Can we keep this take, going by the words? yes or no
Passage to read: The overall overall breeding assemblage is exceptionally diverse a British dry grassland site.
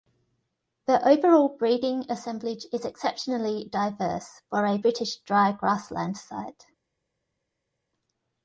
no